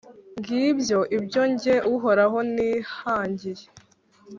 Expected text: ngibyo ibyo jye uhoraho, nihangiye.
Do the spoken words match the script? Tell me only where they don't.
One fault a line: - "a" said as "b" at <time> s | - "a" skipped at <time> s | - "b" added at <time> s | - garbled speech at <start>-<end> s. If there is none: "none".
none